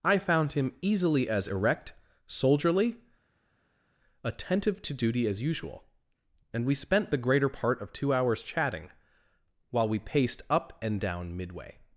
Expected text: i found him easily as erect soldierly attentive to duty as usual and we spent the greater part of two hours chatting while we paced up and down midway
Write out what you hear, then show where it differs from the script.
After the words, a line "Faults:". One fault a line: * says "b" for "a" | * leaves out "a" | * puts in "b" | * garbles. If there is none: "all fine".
i found him easily as erect soldierly attentive to duty as usual and we spent the greater part of two hours chatting while we paced up and down midway
Faults:
all fine